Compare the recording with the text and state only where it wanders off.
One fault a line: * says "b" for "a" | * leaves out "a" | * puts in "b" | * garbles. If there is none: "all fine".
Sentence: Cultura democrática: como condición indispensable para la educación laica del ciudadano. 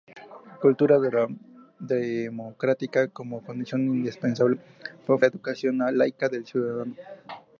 all fine